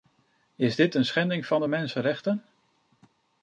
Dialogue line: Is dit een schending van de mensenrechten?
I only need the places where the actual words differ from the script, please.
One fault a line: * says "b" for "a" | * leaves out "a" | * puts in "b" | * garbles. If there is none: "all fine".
all fine